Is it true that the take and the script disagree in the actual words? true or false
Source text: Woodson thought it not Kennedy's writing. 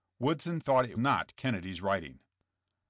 false